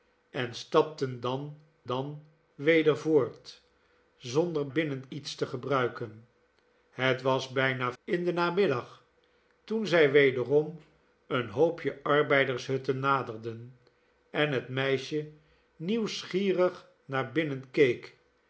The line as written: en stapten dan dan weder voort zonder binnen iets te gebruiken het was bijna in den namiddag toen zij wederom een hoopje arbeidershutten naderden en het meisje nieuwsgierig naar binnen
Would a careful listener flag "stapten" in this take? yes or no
no